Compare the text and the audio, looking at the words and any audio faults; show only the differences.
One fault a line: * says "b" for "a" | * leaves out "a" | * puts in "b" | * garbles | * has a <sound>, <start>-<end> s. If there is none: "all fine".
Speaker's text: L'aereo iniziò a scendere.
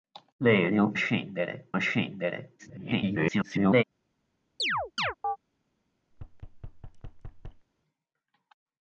* says "scendere" for "iniziò"
* garbles
* has a chirp, 4.6-5.4 s
* has a thud, 6.1-7.7 s